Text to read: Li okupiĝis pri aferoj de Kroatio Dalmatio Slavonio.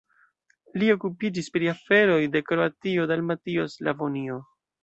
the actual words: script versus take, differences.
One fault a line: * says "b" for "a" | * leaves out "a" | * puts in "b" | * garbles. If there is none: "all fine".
all fine